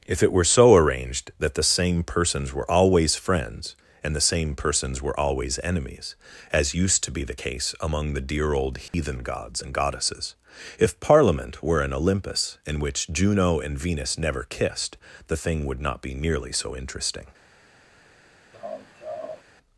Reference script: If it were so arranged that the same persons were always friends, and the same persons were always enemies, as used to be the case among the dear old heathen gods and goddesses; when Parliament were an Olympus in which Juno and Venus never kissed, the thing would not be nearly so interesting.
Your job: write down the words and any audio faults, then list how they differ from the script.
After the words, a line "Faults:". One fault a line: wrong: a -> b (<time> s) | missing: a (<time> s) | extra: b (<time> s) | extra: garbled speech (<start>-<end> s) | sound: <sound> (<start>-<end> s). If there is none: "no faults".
If it were so arranged that the same persons were always friends, and the same persons were always enemies, as used to be the case among the dear old heathen gods and goddesses; if Parliament were an Olympus in which Juno and Venus never kissed, the thing would not be nearly so interesting.
Faults:
sound: dropout (8.9-8.9 s)
wrong: when -> if (10.8 s)
sound: laugh (18.5-19.4 s)